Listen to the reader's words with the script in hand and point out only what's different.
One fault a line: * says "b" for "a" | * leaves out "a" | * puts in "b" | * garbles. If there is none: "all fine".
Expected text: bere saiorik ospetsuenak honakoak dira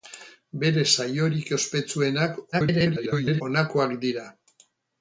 * garbles